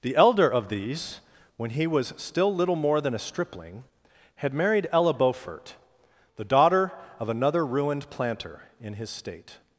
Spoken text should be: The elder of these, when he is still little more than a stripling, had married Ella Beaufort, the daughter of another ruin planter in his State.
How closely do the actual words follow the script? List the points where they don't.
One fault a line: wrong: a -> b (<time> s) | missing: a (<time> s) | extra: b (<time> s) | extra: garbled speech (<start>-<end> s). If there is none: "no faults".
wrong: is -> was (1.9 s)
wrong: ruin -> ruined (7.7 s)